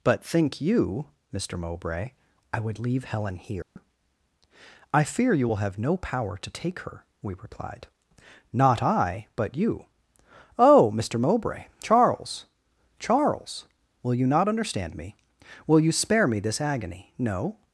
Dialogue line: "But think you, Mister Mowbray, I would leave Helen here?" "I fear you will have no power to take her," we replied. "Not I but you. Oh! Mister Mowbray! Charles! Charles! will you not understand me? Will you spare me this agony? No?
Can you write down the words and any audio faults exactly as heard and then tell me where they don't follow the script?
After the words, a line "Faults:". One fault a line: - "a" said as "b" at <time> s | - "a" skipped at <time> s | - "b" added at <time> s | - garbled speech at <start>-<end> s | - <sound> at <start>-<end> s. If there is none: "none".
"But think you, Mister Mowbray, I would leave Helen here?" "I fear you will have no power to take her," we replied. "Not I but you. Oh! Mister Mowbray! Charles! Charles! will you not understand me? Will you spare me this agony? No?
Faults:
- dropout at 3.6-3.8 s